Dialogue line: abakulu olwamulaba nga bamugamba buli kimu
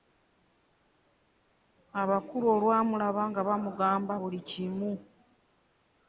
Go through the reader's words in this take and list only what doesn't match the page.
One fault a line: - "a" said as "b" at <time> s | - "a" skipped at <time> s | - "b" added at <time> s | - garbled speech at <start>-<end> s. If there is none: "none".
none